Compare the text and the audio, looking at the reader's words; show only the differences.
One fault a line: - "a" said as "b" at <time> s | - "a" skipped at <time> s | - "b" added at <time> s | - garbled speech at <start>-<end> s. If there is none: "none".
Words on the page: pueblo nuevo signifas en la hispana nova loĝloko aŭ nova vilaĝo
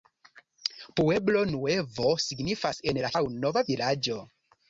- "hispana nova loĝloko" skipped at 3.1 s